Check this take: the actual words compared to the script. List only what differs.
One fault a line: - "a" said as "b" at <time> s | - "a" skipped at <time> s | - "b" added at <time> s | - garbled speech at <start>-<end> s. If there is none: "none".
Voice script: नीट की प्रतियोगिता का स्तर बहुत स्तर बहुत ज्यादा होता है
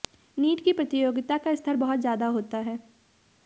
- "स्तर बहुत" skipped at 2.0 s